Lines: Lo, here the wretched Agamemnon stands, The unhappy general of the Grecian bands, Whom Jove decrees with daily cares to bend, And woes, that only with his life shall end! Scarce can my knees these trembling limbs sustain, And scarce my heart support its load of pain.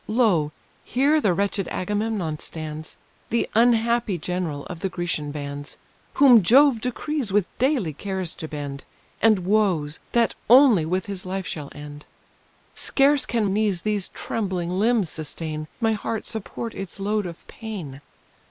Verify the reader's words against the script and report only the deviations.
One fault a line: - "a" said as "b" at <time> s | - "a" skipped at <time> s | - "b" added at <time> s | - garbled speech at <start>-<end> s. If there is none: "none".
- "my" skipped at 13.4 s
- "And scarce" skipped at 15.7 s